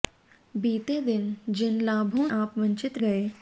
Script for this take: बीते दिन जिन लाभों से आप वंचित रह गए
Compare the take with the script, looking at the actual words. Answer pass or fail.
fail